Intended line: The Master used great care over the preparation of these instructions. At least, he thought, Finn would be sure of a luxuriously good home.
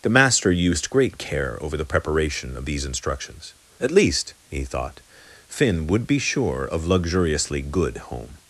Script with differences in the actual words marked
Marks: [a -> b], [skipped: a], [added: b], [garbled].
The Master used great care over the preparation of these instructions. At least, he thought, Finn would be sure of [skipped: a] luxuriously good home.